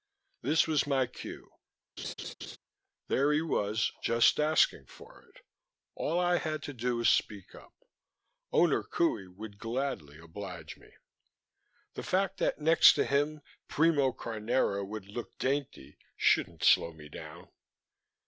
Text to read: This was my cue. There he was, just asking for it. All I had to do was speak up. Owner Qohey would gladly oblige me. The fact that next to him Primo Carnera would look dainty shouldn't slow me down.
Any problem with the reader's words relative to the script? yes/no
no